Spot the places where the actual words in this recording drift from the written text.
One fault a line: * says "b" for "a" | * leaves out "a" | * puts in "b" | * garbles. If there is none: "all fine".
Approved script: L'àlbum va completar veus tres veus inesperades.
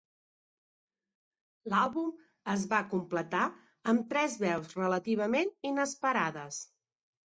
* puts in "es"
* says "amb" for "veus"
* puts in "relativament"